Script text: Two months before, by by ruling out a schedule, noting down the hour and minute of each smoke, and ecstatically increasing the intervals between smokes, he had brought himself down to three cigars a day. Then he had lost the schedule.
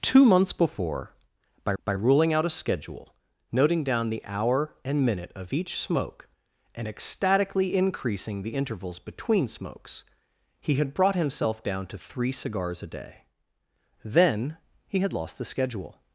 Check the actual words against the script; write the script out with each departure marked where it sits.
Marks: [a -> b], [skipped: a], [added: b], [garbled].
Two months before, by by ruling out a schedule, noting down the hour and minute of each smoke, and ecstatically increasing the intervals between smokes, he had brought himself down to three cigars a day. Then he had lost the schedule.